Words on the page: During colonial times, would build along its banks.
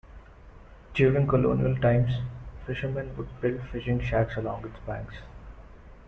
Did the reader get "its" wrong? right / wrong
right